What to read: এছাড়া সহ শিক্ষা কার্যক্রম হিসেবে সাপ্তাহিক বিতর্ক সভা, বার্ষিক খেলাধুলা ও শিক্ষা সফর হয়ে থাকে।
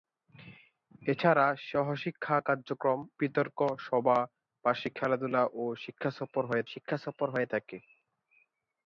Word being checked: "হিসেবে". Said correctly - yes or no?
no